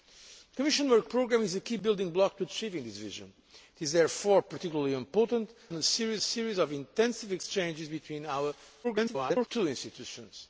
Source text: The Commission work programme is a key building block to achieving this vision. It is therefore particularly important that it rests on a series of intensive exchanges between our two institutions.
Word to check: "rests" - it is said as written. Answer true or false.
false